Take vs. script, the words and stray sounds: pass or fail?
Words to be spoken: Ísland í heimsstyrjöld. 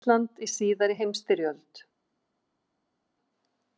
fail